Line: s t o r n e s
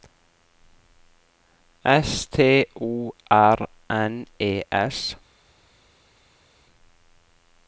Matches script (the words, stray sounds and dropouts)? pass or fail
pass